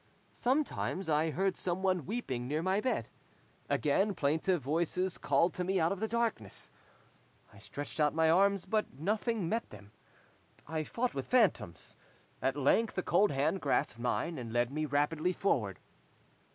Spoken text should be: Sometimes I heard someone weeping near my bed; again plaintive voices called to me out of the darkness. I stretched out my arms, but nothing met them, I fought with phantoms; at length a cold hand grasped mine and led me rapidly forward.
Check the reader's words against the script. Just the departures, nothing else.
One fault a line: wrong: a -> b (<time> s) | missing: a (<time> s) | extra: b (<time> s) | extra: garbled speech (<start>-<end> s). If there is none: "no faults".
no faults